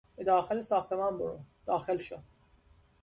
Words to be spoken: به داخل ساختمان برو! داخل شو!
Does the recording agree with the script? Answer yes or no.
yes